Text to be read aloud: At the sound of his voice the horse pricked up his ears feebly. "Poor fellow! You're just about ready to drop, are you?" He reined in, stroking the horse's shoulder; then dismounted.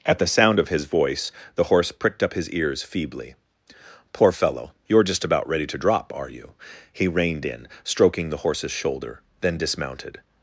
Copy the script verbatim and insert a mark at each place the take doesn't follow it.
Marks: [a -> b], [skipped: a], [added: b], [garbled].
At the sound of his voice the horse pricked up his ears feebly. "Poor fellow! You're just about ready to drop, are you?" He reined in, stroking the horse's shoulder; then dismounted.